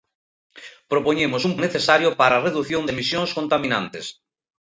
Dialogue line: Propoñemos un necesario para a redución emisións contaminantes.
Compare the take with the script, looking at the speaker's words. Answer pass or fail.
pass